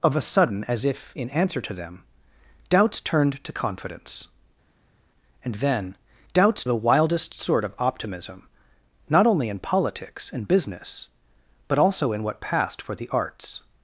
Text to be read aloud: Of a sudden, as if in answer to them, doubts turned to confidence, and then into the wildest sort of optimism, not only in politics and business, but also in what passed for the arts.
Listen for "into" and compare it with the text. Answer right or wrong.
wrong